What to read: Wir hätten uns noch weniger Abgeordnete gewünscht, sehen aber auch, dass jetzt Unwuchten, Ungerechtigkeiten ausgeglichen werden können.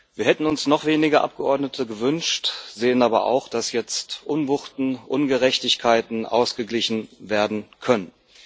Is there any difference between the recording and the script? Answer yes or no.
no